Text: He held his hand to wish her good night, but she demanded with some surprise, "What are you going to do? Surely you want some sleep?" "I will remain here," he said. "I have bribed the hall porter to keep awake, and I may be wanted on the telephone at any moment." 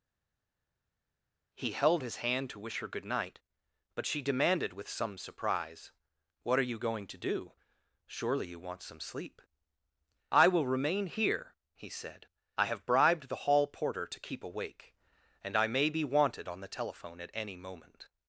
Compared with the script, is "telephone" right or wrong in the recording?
right